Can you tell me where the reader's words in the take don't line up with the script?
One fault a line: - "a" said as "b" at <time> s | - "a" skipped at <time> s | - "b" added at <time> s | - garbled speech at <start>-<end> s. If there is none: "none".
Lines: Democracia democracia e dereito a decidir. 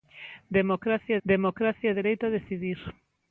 none